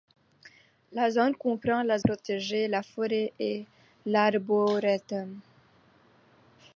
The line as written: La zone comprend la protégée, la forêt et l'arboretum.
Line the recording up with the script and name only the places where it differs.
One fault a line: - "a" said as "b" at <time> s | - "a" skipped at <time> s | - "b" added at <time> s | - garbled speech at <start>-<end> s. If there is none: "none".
none